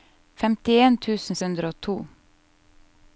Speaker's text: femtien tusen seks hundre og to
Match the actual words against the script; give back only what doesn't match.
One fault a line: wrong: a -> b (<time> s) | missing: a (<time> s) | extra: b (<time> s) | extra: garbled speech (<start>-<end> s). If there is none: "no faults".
missing: seks (1.4 s)